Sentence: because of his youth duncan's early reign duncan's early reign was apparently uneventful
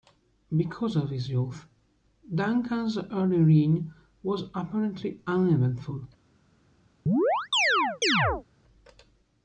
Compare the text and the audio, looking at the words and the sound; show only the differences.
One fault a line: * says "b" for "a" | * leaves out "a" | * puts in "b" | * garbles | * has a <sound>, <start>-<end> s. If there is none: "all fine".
* leaves out "duncan's early reign"
* has a chirp, 7.1-8.4 s